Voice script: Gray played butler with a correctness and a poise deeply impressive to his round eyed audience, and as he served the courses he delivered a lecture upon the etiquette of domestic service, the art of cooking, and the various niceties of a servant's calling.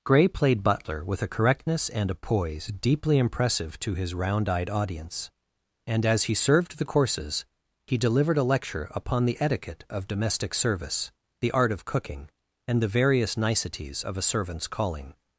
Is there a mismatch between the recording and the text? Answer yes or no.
no